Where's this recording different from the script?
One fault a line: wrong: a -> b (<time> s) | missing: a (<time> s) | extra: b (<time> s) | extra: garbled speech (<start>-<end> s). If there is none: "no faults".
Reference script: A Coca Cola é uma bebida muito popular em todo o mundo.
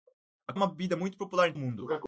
missing: Coca Cola (0.5 s)
missing: todo (1.5 s)